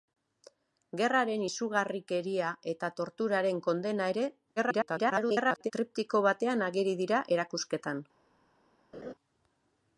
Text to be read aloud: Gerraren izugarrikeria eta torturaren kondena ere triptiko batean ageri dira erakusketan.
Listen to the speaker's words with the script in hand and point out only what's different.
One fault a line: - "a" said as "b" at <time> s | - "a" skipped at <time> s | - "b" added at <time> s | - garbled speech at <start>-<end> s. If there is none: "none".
- garbled speech at 4.6-5.7 s